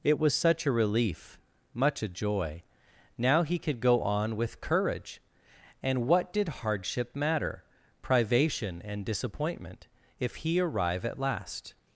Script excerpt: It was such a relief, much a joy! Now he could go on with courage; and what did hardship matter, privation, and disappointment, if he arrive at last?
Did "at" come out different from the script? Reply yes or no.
no